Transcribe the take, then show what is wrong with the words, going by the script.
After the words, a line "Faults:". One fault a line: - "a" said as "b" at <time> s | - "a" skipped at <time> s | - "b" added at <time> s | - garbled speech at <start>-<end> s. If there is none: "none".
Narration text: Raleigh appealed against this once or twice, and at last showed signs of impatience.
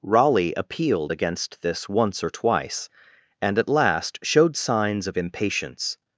Raleigh appealed against this once or twice, and at last showed signs of impatience.
Faults:
none